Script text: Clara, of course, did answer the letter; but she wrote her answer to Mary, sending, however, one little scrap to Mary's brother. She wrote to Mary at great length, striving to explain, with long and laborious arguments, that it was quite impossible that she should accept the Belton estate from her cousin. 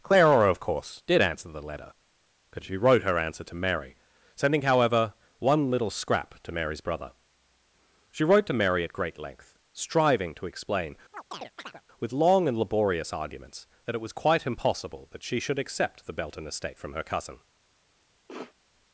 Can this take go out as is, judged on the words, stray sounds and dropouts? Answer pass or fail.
fail